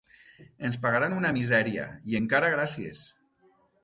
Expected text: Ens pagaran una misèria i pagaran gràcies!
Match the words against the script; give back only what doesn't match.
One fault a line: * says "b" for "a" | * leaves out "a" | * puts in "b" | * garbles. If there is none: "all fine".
* says "encara" for "pagaran"